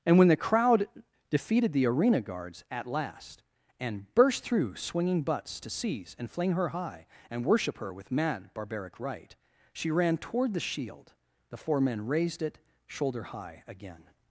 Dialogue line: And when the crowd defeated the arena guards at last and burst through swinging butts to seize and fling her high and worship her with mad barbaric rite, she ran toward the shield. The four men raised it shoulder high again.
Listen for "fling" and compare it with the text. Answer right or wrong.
right